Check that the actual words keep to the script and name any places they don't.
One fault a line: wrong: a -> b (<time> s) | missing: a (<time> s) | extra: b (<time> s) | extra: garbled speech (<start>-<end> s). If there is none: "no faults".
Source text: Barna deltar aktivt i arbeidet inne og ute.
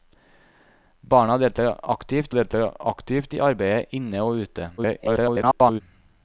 extra: deltar aktivt (2.3 s)
extra: garbled speech (4.8-5.8 s)